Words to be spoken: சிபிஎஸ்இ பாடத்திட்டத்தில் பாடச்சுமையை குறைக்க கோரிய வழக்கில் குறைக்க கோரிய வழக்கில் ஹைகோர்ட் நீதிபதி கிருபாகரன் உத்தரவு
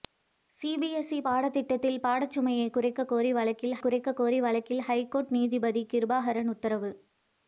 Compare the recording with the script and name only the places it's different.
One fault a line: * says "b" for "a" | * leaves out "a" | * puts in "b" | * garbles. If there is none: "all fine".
all fine